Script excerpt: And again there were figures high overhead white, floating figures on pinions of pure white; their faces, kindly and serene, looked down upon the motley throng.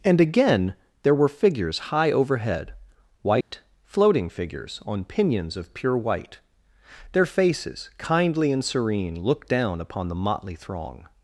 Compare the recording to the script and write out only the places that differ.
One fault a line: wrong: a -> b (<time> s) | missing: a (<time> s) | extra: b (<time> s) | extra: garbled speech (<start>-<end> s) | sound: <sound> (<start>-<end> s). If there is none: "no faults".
sound: dropout (3.4-3.5 s)